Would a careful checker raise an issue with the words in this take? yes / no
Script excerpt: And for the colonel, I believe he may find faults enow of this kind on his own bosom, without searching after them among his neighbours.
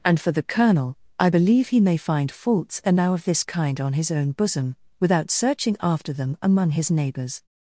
no